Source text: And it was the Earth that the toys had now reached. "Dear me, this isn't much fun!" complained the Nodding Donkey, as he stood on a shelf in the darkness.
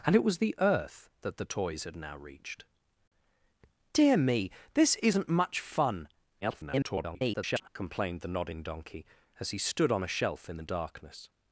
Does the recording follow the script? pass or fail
fail